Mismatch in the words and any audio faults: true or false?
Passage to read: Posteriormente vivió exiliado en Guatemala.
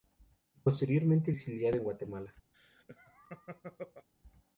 true